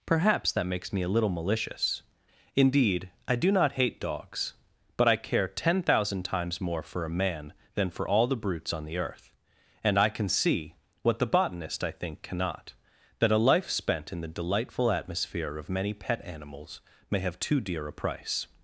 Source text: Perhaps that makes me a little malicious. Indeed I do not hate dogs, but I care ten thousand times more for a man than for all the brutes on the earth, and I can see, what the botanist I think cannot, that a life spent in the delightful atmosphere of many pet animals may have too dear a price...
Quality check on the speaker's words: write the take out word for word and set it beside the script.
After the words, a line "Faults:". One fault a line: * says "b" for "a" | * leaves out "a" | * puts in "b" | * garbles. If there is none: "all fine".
Perhaps that makes me a little malicious. Indeed I do not hate dogs, but I care ten thousand times more for a man than for all the brutes on the earth, and I can see, what the botanist I think cannot, that a life spent in the delightful atmosphere of many pet animals may have too dear a price...
Faults:
all fine